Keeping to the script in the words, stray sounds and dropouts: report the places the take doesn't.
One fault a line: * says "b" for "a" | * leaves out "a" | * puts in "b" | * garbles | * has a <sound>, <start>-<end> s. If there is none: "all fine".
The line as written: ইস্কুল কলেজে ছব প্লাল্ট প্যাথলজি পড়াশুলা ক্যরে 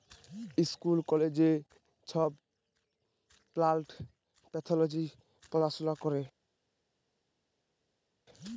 all fine